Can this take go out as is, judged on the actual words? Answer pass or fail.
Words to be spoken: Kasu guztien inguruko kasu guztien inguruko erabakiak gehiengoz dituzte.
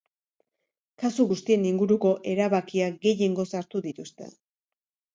fail